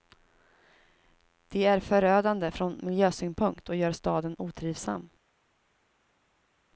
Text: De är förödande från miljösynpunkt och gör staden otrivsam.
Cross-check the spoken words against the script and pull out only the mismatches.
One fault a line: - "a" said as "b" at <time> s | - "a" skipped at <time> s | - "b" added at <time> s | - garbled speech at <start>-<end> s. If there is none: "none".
none